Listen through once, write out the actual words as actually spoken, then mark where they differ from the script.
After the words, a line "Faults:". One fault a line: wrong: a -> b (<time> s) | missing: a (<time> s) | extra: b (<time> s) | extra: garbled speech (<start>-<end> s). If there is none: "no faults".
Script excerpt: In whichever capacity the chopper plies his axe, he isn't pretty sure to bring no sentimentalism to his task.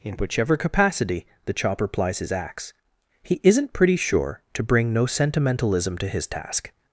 In whichever capacity the chopper plies his axe, he isn't pretty sure to bring no sentimentalism to his task.
Faults:
no faults